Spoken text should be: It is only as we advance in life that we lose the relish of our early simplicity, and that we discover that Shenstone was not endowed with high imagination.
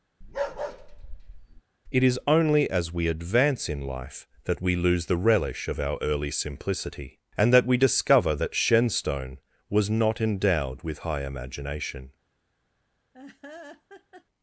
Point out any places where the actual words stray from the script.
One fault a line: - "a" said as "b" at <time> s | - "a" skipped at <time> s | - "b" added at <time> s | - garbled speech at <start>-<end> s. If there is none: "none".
none